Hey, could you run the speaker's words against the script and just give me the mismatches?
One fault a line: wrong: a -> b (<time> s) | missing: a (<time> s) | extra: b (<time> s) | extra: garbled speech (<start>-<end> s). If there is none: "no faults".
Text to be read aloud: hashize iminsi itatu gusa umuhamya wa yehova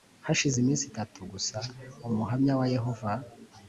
no faults